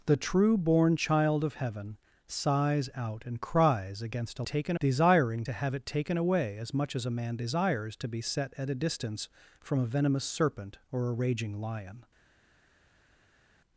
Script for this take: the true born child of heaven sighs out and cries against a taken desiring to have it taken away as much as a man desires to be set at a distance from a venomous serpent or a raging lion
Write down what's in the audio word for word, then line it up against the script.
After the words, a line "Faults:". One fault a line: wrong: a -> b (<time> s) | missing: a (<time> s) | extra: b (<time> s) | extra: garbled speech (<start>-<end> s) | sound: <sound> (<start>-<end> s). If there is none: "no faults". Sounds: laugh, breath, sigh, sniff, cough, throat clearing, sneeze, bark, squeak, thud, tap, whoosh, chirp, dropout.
the true born child of heaven sighs out and cries against a taken desiring to have it taken away as much as a man desires to be set at a distance from a venomous serpent or a raging lion
Faults:
no faults